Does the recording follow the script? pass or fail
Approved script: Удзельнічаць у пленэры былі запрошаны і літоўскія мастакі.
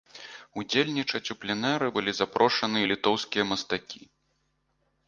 pass